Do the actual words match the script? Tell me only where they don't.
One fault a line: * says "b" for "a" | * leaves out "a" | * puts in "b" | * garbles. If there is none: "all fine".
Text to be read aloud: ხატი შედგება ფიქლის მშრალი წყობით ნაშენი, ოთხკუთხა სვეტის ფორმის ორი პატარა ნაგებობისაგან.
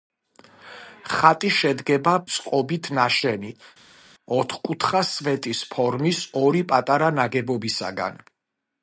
* leaves out "ფიქლის მშრალი"